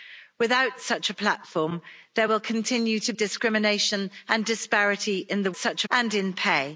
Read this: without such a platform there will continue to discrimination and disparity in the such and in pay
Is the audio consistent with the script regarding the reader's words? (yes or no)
yes